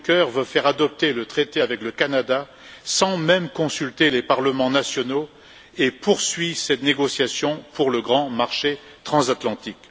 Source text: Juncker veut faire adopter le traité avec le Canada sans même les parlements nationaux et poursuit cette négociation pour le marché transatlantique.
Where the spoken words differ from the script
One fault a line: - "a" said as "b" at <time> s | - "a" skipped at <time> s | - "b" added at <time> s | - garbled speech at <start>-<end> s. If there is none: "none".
- "consulter" added at 3.5 s
- "grand" added at 8.0 s